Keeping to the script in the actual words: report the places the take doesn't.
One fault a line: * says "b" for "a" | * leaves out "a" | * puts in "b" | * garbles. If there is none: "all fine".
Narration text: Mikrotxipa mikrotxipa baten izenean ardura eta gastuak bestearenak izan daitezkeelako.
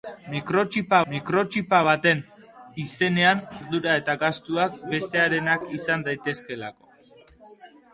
all fine